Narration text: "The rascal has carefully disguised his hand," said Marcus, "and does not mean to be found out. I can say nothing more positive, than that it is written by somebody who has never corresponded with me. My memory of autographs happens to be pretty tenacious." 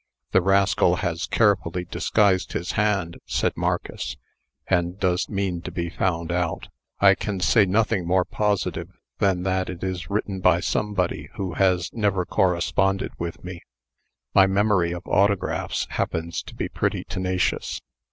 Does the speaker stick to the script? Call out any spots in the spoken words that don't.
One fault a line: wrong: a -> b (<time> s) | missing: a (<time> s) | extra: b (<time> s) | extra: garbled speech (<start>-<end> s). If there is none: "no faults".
missing: not (5.3 s)